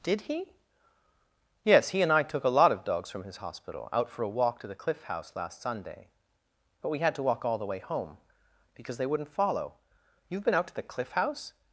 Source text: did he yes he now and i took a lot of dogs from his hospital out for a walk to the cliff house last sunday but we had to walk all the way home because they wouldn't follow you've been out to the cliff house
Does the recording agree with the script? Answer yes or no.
no